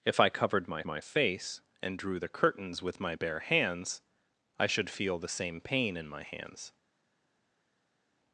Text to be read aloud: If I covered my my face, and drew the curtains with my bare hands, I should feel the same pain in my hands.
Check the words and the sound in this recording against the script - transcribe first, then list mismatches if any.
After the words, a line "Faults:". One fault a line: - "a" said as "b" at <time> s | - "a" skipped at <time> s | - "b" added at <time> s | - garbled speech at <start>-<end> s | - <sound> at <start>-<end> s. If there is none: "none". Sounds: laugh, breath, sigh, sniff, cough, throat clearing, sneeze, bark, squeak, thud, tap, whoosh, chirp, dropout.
If I covered my my face, and drew the curtains with my bare hands, I should feel the same pain in my hands.
Faults:
none